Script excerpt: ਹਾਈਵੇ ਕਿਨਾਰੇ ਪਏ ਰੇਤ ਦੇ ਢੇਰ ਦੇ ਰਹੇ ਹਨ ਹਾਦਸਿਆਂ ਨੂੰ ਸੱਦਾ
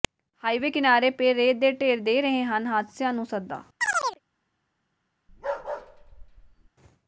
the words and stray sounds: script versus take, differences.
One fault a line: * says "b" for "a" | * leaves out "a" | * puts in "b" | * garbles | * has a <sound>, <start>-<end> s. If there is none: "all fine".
* has a chirp, 3.8-4.2 s
* has a bark, 5.3-6.7 s